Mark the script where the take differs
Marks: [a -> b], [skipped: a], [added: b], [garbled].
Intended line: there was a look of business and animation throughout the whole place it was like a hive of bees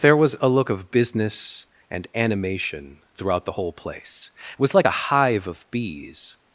there was a look of business and animation throughout the whole place it was like a hive of bees